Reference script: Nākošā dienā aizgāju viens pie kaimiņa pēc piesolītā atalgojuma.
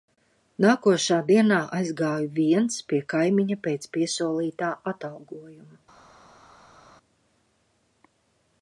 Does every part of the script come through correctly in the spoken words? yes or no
yes